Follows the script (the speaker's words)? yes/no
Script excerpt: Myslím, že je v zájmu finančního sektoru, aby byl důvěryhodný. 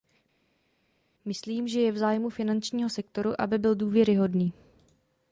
yes